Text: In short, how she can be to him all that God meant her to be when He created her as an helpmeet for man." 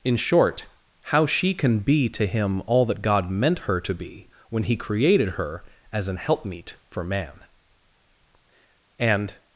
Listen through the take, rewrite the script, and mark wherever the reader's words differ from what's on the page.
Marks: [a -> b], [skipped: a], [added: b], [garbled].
In short, how she can be to him all that God meant her to be when He created her as an helpmeet for man." [added: And]